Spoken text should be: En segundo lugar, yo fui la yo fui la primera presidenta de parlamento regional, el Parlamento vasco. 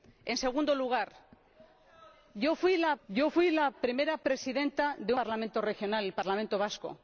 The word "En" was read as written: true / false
true